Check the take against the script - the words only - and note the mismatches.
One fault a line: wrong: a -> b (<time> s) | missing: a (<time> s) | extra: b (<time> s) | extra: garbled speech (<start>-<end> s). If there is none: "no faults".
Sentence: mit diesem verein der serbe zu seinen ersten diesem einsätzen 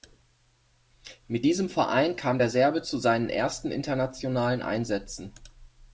extra: kam (2.1 s)
wrong: diesem -> internationalen (3.7 s)